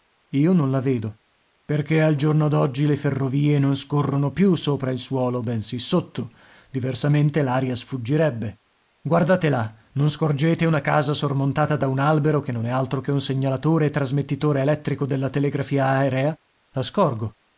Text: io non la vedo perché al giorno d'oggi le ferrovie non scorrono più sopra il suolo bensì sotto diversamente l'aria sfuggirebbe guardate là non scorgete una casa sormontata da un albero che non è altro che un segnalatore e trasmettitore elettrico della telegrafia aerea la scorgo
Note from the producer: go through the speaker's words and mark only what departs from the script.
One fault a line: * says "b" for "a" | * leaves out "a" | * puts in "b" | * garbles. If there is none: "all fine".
all fine